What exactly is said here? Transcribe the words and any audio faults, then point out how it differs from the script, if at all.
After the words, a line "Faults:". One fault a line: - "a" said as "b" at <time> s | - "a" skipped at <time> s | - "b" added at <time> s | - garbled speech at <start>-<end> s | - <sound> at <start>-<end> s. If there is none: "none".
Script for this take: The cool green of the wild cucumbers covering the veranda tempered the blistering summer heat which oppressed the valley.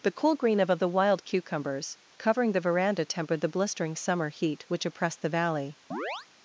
The cool green of of the wild cucumbers covering the veranda tempered the blistering summer heat which oppressed the valley.
Faults:
- "of" added at 0.7 s
- chirp at 5.9-6.3 s